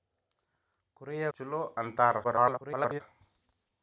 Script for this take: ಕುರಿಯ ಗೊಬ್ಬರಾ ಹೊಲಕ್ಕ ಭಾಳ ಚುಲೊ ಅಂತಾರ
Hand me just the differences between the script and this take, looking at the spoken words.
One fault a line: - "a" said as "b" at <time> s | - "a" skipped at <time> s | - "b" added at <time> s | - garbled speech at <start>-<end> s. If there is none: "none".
- "ಗೊಬ್ಬರಾ ಹೊಲಕ್ಕ ಭಾಳ" skipped at 1.2 s
- garbled speech at 2.2-3.0 s